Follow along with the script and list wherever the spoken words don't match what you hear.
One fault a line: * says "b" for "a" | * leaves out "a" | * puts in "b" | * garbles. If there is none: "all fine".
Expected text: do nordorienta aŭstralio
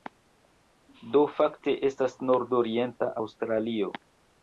* puts in "fakte estas"